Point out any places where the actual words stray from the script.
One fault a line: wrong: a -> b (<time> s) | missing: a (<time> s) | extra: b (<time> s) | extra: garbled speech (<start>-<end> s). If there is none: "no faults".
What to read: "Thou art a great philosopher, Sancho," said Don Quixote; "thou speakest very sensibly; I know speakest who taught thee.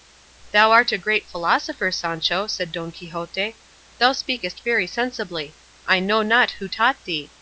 wrong: speakest -> not (6.2 s)